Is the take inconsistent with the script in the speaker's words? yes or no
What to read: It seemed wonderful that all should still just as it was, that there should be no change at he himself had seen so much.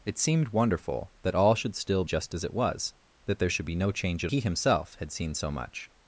no